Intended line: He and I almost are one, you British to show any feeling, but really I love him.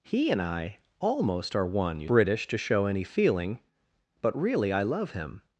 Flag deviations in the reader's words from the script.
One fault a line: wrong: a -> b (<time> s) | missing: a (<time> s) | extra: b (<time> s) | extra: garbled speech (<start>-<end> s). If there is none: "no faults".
no faults